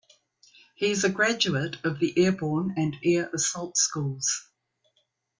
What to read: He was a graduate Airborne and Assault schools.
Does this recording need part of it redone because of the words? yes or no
yes